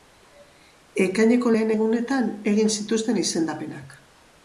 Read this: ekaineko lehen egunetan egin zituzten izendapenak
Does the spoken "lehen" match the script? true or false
true